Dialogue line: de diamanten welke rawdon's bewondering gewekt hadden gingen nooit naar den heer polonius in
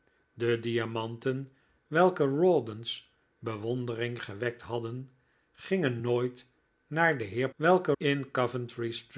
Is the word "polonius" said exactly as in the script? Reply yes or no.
no